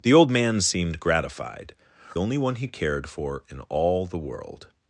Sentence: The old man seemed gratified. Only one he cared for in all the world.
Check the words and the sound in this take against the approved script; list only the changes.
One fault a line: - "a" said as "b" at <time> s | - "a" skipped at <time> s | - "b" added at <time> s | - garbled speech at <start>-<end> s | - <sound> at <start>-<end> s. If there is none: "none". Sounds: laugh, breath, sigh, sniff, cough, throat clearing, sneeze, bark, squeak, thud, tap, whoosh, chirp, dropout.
none